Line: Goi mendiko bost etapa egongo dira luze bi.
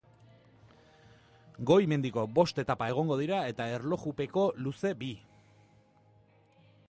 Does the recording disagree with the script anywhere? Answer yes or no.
yes